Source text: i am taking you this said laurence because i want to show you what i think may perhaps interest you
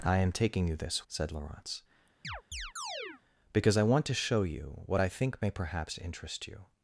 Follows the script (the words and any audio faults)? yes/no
no